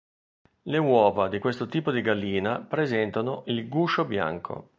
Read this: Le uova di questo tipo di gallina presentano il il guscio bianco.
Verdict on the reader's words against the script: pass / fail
fail